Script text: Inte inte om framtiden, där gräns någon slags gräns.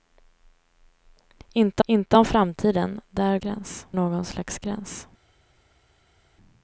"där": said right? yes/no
yes